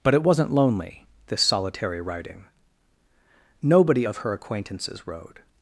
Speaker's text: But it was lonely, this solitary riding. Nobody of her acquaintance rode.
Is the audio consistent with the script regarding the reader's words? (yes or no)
no